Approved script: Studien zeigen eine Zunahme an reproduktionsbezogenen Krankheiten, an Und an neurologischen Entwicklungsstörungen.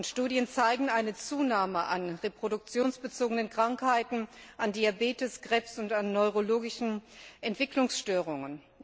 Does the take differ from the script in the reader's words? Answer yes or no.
yes